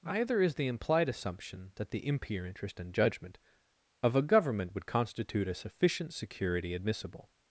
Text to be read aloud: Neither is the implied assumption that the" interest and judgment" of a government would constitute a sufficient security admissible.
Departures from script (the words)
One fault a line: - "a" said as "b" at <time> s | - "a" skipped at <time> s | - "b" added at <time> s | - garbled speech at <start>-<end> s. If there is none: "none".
- "Neither" said as "Either" at 0.0 s
- "impure" added at 2.1 s